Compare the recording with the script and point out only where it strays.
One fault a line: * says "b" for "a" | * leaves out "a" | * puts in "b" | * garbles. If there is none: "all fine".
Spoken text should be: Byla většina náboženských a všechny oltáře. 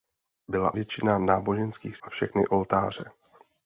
all fine